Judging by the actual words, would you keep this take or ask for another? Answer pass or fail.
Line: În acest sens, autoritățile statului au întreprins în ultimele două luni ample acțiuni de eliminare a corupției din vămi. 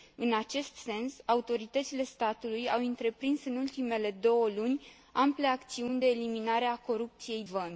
fail